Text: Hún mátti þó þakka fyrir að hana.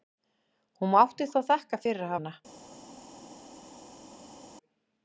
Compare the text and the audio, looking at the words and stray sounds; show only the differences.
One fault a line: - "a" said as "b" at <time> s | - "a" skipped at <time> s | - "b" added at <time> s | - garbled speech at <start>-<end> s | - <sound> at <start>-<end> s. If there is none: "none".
none